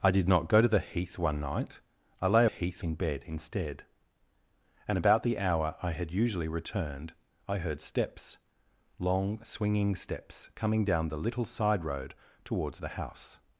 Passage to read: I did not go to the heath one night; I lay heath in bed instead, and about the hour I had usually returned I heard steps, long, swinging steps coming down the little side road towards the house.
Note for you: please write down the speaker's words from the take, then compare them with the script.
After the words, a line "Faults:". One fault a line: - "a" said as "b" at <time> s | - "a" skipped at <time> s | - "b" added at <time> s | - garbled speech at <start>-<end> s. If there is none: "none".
I did not go to the heath one night; I lay heath in bed instead, and about the hour I had usually returned I heard steps, long, swinging steps coming down the little side road towards the house.
Faults:
none